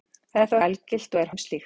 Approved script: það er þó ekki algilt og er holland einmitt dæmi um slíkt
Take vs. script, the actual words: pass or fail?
fail